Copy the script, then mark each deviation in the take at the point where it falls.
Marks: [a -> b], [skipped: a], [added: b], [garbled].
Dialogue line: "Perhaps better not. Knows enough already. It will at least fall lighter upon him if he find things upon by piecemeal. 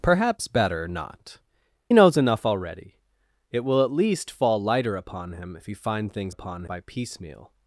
"Perhaps better not. Knows enough already. It will at least fall lighter upon him if he find things upon by piecemeal.